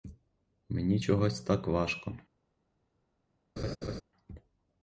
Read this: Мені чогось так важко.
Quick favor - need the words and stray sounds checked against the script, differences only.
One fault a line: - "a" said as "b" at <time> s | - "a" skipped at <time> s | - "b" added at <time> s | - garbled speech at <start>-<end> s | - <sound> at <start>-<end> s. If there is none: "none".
- laugh at 3.6-4.0 s